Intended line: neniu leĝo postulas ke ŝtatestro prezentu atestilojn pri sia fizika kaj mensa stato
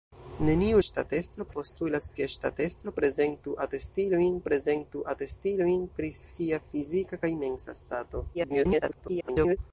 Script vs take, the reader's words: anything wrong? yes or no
yes